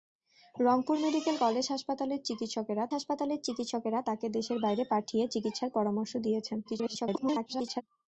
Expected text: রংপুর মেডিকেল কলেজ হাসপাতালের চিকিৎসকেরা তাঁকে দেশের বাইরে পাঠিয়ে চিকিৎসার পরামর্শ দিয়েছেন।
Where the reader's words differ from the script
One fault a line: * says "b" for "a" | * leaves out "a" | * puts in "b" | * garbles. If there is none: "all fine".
* puts in "হাসপাতালের চিকিৎসকেরা"
* garbles